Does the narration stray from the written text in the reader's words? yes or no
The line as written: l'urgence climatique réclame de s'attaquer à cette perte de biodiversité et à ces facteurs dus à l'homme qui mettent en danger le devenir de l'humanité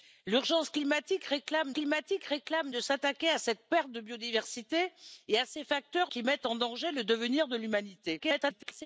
yes